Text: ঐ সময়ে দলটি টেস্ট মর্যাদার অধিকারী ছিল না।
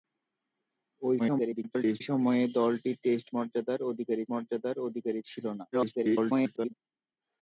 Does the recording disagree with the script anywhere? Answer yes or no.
yes